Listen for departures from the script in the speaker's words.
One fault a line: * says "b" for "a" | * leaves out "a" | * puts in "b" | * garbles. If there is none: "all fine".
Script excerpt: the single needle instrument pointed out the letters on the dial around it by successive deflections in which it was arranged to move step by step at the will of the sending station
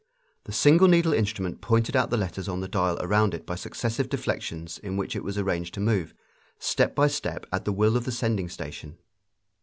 all fine